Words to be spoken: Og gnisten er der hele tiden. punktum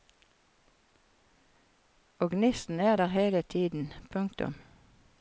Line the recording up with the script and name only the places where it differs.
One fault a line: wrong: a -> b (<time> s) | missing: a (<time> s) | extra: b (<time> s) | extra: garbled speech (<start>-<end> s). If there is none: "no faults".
no faults